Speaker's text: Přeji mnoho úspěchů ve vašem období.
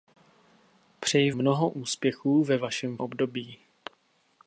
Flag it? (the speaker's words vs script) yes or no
no